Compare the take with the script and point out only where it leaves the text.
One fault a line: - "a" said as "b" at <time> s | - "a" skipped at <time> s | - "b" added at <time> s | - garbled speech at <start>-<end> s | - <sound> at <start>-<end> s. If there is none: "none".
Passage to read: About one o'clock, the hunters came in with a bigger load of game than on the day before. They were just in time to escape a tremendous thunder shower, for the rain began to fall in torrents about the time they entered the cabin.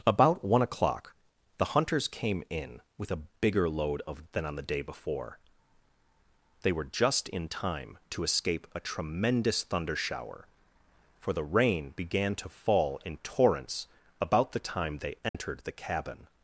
- "game" skipped at 4.2 s
- dropout at 15.3-15.3 s